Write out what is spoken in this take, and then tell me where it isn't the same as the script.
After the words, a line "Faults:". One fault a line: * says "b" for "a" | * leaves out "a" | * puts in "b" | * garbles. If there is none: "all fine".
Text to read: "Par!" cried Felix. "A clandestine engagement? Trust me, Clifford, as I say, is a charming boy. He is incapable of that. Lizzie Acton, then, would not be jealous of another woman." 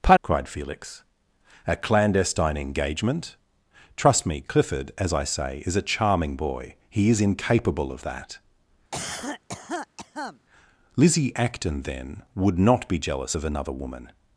"Par!" cried Felix. "A clandestine engagement? Trust me, Clifford, as I say, is a charming boy. He is incapable of that. Lizzie Acton, then, would not be jealous of another woman."
Faults:
all fine